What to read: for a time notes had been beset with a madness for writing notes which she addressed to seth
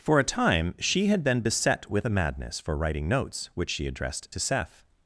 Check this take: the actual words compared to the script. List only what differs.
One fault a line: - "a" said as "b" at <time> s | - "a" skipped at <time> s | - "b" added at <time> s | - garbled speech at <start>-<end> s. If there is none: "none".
- "notes" said as "she" at 0.8 s